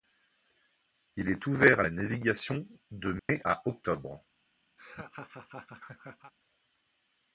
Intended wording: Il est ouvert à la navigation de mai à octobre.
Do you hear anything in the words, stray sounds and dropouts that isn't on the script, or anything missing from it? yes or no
yes